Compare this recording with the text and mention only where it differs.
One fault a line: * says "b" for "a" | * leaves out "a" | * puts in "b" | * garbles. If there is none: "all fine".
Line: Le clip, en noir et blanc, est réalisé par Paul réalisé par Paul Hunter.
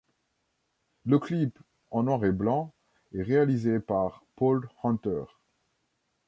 * leaves out "réalisé par Paul"